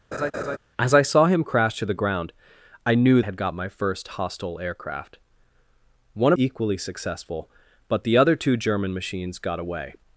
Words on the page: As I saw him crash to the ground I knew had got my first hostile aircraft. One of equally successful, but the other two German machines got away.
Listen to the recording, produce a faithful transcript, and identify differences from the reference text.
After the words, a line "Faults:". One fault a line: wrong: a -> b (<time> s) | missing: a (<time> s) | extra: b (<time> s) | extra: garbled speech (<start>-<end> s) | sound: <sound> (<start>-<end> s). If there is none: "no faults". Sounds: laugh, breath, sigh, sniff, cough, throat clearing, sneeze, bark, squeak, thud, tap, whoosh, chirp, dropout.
As I saw him crash to the ground I knew had got my first hostile aircraft. One of equally successful, but the other two German machines got away.
Faults:
sound: laugh (0.1-0.6 s)